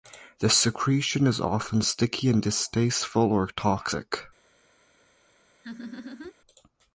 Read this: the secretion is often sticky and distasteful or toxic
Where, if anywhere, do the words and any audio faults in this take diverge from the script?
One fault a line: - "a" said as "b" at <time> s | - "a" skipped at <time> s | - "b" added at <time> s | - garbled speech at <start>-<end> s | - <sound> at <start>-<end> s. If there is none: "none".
- laugh at 5.6-6.3 s